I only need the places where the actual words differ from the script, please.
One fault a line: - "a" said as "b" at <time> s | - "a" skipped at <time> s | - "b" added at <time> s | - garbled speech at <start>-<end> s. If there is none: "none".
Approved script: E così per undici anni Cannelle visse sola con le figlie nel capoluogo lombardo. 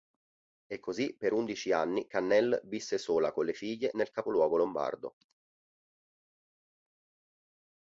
none